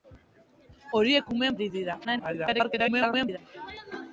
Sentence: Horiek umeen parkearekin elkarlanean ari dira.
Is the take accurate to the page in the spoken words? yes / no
no